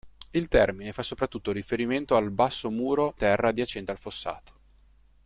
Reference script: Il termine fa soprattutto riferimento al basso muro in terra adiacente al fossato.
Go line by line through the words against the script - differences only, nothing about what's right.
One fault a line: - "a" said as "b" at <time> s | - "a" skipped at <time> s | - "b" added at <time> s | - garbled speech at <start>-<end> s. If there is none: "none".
- "in" skipped at 3.2 s